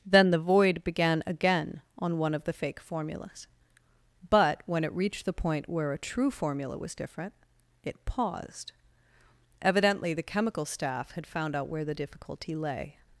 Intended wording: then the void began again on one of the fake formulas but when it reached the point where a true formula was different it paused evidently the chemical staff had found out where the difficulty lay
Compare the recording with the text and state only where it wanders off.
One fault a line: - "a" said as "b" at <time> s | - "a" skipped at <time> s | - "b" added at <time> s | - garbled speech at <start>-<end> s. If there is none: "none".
none